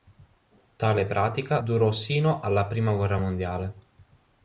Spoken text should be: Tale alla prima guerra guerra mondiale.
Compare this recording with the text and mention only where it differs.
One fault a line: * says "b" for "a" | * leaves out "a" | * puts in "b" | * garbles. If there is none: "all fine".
* puts in "pratica durò sino"
* leaves out "guerra"